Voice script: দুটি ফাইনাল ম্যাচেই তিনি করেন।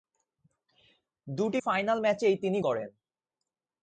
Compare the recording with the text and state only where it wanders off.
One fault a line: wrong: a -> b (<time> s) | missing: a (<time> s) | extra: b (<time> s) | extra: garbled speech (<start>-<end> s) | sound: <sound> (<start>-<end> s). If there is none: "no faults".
no faults